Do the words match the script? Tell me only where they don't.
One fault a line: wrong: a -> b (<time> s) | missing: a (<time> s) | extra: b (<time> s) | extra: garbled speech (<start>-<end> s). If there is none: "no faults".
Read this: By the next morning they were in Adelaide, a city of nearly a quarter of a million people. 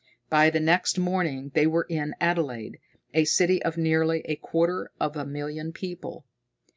no faults